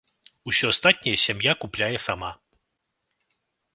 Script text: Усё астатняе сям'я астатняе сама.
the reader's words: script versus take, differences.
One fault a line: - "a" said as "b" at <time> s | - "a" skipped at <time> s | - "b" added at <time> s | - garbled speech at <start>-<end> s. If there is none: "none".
- "астатняе" said as "купляе" at 1.6 s